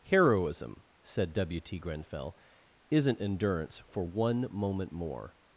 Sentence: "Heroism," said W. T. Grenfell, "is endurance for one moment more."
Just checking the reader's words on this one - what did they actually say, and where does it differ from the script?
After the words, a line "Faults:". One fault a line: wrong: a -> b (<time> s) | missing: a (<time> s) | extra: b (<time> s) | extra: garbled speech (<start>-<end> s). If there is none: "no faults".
"Heroism," said W. T. Grenfell, "isn't endurance for one moment more."
Faults:
wrong: is -> isn't (2.9 s)